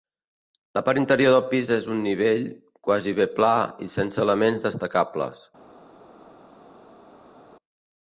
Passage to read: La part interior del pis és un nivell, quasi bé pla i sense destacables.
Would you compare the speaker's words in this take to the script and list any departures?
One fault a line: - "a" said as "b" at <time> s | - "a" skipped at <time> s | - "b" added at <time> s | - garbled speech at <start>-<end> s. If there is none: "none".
- "elements" added at 4.3 s